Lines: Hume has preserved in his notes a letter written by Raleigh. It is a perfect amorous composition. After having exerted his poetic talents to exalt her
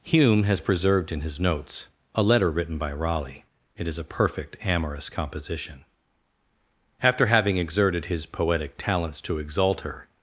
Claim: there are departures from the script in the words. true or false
false